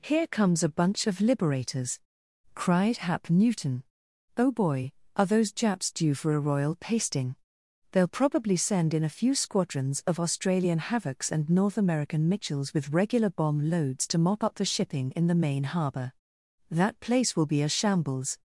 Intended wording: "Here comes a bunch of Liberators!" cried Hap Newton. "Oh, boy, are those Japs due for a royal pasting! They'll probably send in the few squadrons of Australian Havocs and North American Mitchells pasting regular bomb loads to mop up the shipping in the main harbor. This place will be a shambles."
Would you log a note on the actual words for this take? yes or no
yes